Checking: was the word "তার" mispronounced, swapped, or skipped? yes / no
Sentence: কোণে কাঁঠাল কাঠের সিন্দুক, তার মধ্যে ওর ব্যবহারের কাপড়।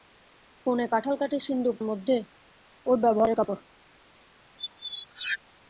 yes